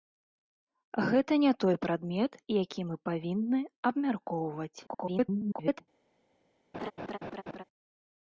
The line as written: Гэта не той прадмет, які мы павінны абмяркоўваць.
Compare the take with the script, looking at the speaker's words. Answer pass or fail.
fail